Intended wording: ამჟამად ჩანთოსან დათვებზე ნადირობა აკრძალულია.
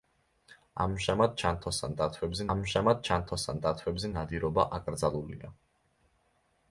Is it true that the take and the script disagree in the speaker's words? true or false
true